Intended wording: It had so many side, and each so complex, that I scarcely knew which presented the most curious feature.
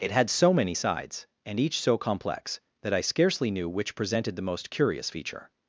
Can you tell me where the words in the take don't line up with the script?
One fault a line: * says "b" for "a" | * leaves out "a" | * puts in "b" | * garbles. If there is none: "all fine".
* says "sides" for "side"